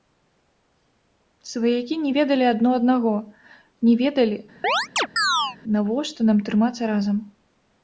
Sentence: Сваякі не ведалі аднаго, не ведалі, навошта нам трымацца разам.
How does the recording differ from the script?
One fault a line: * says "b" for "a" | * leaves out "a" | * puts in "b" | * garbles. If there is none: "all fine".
* puts in "адно"